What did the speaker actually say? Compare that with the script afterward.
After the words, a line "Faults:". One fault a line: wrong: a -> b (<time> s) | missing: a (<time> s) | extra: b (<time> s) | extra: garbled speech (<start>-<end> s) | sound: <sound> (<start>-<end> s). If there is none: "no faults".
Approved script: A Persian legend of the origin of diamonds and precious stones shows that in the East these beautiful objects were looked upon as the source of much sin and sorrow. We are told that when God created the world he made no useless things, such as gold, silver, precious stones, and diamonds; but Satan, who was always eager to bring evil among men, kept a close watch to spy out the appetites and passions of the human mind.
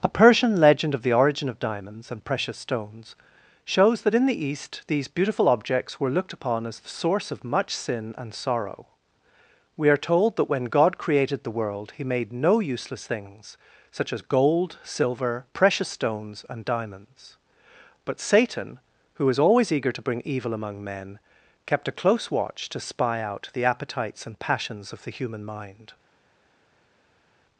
A Persian legend of the origin of diamonds and precious stones shows that in the East these beautiful objects were looked upon as the source of much sin and sorrow. We are told that when God created the world he made no useless things, such as gold, silver, precious stones, and diamonds; but Satan, who was always eager to bring evil among men, kept a close watch to spy out the appetites and passions of the human mind.
Faults:
no faults